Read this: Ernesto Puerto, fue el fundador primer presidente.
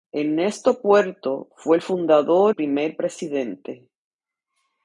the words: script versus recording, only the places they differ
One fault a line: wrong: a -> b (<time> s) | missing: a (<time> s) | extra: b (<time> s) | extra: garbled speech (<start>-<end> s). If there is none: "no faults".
no faults